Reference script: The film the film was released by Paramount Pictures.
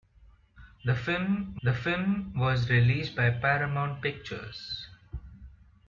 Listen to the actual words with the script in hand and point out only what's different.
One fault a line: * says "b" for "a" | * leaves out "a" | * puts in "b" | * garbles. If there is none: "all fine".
all fine